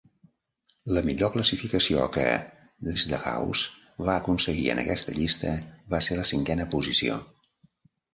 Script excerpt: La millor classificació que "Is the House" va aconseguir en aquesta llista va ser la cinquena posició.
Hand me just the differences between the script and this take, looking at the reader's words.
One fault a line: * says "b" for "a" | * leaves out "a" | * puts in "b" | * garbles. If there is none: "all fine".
all fine